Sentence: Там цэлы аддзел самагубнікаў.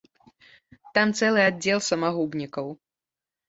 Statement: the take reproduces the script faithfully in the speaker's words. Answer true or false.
true